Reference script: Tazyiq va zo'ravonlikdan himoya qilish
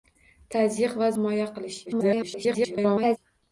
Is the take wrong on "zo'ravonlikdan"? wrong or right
wrong